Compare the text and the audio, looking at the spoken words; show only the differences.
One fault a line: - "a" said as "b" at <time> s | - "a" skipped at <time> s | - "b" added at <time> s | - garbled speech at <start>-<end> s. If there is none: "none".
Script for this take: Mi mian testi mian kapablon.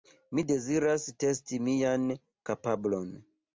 - "mian" said as "deziras" at 0.5 s